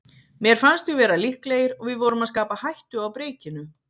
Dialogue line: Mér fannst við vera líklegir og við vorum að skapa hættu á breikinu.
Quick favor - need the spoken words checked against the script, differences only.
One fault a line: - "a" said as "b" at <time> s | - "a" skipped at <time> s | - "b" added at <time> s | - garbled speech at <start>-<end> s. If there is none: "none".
none